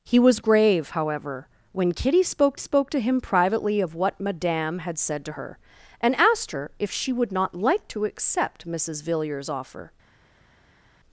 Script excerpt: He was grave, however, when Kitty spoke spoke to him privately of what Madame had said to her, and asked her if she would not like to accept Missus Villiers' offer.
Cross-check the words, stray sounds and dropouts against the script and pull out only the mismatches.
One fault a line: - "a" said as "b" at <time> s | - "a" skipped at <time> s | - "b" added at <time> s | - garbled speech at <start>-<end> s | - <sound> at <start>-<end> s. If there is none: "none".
none